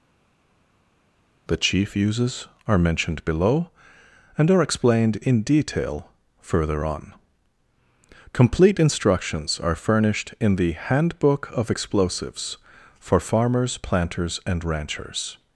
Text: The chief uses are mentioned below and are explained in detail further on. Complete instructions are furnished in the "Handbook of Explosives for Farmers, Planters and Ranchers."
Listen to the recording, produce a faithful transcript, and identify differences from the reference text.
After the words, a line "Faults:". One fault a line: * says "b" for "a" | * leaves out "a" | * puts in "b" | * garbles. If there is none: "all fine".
The chief uses are mentioned below and are explained in detail further on. Complete instructions are furnished in the "Handbook of Explosives for Farmers, Planters and Ranchers."
Faults:
all fine